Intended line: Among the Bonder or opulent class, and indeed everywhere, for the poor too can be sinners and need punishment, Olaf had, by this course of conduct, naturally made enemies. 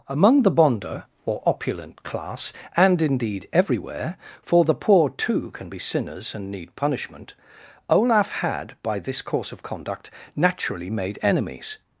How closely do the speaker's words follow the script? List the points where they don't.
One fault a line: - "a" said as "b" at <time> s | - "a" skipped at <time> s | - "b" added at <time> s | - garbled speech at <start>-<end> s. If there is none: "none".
none